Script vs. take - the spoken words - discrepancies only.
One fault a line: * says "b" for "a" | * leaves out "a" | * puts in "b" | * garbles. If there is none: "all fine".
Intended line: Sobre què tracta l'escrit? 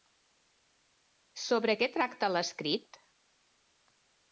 all fine